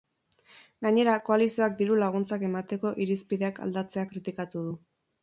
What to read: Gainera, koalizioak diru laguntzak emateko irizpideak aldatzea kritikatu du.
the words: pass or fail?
pass